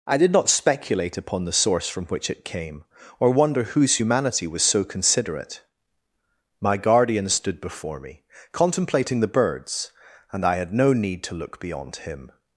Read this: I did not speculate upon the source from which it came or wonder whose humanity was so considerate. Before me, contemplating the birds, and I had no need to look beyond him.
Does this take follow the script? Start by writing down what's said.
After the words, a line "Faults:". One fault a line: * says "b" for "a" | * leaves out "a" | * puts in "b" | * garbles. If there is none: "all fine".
I did not speculate upon the source from which it came or wonder whose humanity was so considerate. My guardian stood before me, contemplating the birds, and I had no need to look beyond him.
Faults:
* puts in "My guardian stood"